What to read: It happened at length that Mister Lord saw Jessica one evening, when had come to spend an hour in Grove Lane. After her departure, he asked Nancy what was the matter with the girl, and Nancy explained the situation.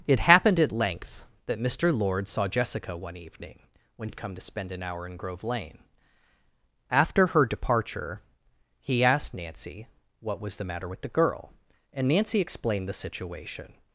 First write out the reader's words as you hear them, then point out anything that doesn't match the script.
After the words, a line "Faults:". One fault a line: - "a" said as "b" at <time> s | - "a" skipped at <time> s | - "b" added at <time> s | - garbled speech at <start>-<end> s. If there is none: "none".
It happened at length that Mister Lord saw Jessica one evening, when had come to spend an hour in Grove Lane. After her departure, he asked Nancy what was the matter with the girl, and Nancy explained the situation.
Faults:
none